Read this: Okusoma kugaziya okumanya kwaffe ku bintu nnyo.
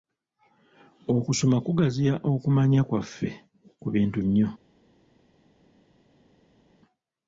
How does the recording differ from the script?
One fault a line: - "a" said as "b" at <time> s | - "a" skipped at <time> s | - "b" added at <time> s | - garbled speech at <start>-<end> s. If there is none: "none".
none